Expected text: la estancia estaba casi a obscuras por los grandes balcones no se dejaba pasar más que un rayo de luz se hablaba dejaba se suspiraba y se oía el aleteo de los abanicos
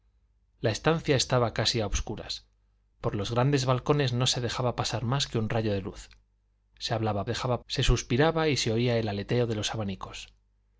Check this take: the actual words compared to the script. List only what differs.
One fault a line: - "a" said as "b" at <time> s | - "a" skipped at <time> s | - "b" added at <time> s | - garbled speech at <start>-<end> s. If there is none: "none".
none